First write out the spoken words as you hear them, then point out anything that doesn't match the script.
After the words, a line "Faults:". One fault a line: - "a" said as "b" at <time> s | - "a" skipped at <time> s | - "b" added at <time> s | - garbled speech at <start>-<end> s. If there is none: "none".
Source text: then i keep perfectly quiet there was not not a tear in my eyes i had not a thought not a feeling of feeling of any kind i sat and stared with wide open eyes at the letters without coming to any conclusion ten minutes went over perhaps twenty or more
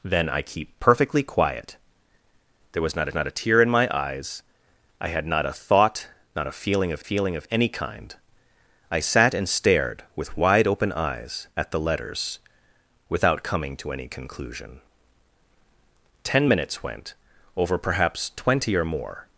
then i keep perfectly quiet there was not not a tear in my eyes i had not a thought not a feeling of feeling of any kind i sat and stared with wide open eyes at the letters without coming to any conclusion ten minutes went over perhaps twenty or more
Faults:
none